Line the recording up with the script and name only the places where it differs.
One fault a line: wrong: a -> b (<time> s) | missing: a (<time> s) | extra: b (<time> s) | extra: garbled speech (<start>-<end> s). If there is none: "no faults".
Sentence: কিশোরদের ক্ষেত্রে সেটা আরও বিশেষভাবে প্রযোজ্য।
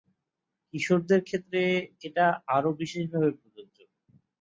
wrong: সেটা -> এটা (2.0 s)